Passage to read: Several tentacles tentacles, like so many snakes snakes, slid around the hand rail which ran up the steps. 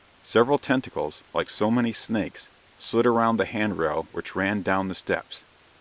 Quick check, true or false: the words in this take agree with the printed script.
false